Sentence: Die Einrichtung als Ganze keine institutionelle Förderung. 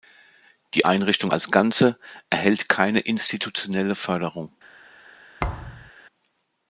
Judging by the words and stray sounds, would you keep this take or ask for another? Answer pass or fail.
fail